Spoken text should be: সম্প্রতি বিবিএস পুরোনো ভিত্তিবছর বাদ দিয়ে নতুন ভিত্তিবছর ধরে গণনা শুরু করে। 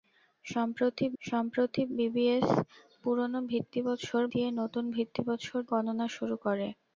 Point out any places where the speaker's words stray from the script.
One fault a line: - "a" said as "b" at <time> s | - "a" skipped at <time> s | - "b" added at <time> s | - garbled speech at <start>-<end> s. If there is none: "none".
- "সম্প্রতি" added at 1.2 s
- "বাদ" skipped at 4.2 s
- "ধরে" skipped at 5.6 s